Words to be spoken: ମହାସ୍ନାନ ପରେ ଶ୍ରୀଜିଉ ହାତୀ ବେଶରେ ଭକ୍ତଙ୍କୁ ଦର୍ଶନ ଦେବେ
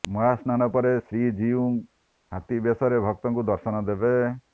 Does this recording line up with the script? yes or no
yes